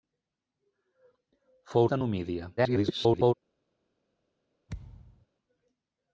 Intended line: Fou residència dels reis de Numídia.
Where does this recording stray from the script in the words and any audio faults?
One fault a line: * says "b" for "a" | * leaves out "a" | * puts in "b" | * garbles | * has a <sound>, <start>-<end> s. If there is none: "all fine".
* leaves out "residència dels reis"
* garbles
* has a thud, 4.7-5.3 s